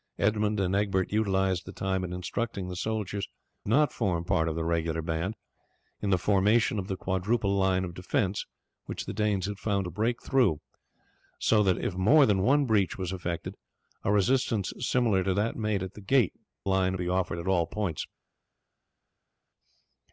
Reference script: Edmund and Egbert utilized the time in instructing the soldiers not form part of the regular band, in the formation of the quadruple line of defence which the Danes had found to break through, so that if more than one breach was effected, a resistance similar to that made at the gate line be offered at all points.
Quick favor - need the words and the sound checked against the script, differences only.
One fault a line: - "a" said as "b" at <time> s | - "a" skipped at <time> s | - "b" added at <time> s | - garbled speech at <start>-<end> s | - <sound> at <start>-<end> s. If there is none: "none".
none